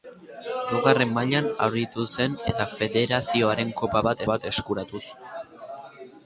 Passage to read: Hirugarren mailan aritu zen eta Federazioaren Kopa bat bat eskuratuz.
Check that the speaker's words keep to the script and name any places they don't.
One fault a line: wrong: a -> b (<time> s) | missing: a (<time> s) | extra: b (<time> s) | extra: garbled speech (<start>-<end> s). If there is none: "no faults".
no faults